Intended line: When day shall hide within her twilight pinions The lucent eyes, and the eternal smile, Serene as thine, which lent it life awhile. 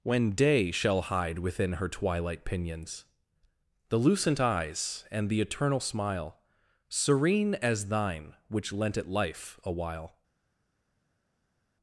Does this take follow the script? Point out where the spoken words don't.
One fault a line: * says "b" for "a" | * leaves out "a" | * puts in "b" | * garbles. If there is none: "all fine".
all fine